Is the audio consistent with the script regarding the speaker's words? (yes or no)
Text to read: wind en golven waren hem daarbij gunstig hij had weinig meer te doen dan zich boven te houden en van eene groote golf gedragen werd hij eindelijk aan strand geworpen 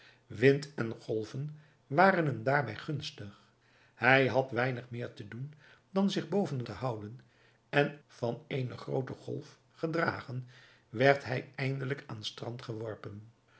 yes